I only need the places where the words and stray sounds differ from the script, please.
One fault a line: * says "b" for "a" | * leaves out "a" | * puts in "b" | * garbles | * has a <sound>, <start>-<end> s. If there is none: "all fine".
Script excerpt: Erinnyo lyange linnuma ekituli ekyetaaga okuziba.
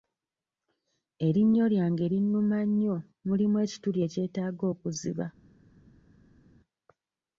* puts in "nnyo mulimu"